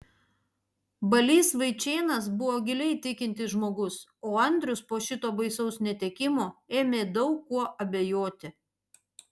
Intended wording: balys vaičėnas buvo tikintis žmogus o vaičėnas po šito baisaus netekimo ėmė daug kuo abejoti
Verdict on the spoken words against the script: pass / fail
fail